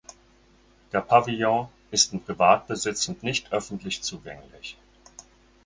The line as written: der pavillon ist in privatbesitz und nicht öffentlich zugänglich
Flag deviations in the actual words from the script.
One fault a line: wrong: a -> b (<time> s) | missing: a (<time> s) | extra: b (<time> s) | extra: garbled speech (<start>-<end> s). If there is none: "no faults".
no faults